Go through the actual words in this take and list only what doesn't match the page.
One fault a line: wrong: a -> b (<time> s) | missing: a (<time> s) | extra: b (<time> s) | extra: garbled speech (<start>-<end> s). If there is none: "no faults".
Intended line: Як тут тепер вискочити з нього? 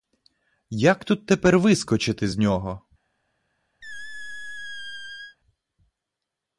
no faults